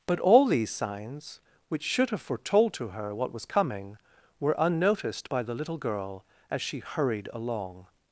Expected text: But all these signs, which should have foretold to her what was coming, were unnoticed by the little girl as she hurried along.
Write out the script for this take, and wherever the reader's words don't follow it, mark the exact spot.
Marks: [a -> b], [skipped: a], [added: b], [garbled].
But all these signs, which should have foretold to her what was coming, were unnoticed by the little girl as she hurried along.